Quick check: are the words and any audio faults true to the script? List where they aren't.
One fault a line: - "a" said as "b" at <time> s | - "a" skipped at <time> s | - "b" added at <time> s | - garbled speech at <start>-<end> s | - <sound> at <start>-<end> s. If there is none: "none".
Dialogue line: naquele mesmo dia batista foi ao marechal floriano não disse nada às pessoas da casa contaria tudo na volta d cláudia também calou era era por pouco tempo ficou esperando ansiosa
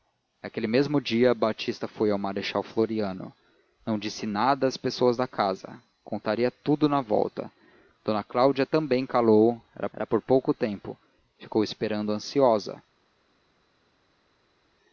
none